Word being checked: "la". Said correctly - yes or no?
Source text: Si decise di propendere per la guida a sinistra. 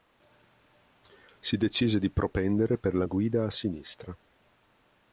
yes